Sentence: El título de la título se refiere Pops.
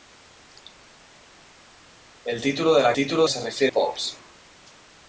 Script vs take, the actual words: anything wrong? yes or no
no